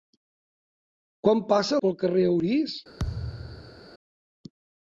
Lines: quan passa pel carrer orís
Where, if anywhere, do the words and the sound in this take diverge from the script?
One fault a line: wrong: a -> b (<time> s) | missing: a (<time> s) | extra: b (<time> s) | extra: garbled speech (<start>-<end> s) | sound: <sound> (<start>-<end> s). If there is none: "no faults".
sound: thud (3.0-3.8 s)